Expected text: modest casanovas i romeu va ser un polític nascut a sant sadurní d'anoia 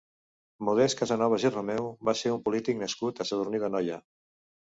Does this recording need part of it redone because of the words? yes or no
yes